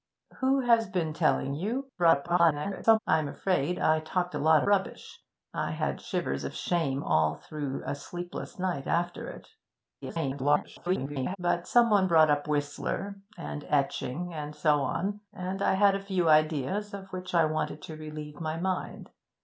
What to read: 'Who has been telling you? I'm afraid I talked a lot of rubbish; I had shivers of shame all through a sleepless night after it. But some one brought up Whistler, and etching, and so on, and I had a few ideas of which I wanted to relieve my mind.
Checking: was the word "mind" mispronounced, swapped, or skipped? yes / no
no